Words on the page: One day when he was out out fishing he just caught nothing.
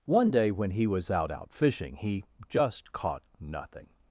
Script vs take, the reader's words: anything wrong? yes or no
no